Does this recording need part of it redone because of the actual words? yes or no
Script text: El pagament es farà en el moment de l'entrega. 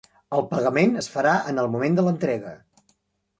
no